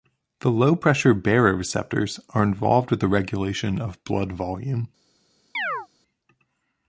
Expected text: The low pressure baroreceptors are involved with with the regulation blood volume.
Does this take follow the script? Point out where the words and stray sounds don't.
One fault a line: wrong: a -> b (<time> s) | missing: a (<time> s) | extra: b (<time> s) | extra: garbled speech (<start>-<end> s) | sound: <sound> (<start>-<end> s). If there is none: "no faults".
missing: with (3.0 s)
extra: of (3.8 s)
sound: chirp (5.5-5.9 s)